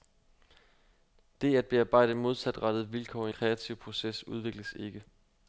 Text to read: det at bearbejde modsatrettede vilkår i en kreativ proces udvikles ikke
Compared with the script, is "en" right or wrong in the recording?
wrong